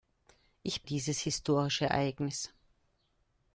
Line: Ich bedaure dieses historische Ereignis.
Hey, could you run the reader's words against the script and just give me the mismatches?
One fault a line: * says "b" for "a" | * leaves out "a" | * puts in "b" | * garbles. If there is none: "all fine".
* leaves out "bedaure"